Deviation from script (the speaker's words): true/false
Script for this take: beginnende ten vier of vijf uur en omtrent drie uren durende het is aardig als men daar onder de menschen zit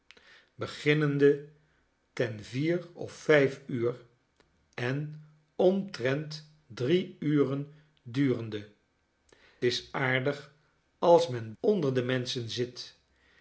true